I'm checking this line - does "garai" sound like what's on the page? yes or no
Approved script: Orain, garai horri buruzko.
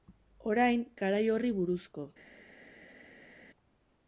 yes